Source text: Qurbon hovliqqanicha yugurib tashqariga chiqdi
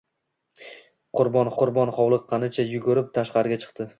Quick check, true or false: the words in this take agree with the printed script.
false